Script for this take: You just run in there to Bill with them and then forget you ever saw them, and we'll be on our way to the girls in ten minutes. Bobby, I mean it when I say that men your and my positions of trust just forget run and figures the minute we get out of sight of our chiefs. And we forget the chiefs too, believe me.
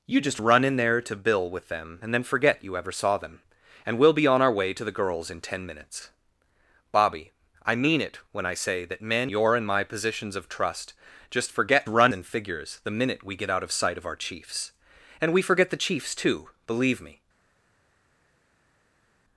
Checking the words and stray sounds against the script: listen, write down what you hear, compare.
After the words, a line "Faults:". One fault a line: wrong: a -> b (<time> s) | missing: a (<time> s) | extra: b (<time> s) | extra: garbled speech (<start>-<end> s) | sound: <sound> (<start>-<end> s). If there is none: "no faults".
You just run in there to Bill with them and then forget you ever saw them, and we'll be on our way to the girls in ten minutes. Bobby, I mean it when I say that men your and my positions of trust just forget run and figures the minute we get out of sight of our chiefs. And we forget the chiefs too, believe me.
Faults:
no faults